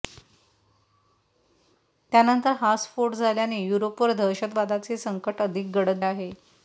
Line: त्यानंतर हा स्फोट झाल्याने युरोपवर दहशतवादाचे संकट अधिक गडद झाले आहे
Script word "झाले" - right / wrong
wrong